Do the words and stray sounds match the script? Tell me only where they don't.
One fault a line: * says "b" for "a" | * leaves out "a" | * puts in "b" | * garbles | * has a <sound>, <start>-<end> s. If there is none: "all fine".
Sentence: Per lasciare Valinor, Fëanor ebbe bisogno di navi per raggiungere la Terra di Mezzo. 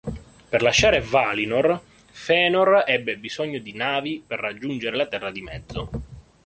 all fine